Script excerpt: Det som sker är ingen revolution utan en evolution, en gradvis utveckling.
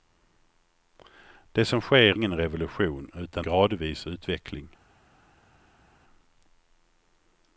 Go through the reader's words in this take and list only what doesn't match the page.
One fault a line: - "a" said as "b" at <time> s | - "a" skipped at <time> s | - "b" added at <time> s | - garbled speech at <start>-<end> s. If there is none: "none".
- "är" skipped at 2.2 s
- "en evolution en" skipped at 3.5 s